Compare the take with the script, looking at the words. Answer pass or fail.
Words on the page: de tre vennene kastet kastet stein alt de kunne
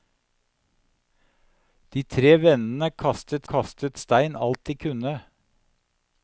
pass